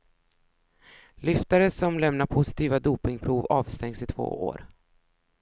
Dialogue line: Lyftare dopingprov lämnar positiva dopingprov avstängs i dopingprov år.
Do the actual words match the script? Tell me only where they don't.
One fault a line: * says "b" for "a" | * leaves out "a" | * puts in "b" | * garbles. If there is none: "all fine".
* says "som" for "dopingprov"
* says "två" for "dopingprov"